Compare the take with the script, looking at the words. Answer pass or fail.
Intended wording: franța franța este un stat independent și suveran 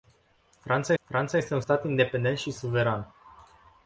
pass